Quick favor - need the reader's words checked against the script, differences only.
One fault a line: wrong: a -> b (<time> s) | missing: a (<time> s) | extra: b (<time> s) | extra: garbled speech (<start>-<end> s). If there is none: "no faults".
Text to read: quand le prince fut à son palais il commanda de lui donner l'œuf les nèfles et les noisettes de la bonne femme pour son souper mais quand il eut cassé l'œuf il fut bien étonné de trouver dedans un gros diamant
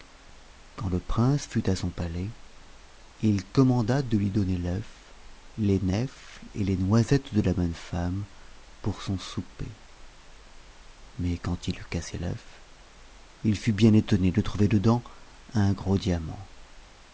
no faults